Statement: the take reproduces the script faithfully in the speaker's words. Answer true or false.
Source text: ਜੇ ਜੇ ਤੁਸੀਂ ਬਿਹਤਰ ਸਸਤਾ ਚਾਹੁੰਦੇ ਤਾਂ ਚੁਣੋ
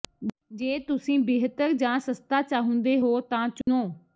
false